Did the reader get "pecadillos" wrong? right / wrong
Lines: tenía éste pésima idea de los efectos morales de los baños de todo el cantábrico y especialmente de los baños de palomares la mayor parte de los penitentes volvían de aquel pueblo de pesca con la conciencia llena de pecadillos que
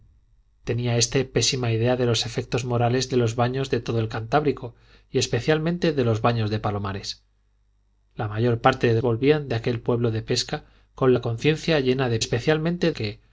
wrong